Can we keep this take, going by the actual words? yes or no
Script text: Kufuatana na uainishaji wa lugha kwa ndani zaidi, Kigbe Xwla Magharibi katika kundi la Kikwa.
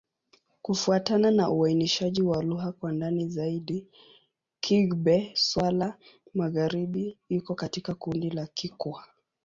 no